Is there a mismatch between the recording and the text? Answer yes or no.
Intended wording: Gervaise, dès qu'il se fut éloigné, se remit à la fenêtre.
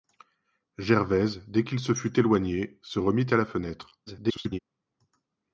yes